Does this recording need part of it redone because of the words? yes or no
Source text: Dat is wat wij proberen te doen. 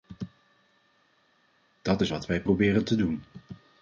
no